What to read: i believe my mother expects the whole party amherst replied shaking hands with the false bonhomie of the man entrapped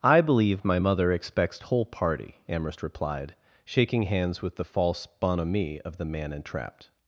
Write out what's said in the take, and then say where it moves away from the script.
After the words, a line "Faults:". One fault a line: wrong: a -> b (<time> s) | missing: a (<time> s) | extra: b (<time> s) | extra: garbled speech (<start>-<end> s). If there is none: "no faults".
i believe my mother expects whole party amherst replied shaking hands with the false bonhomie of the man entrapped
Faults:
missing: the (1.6 s)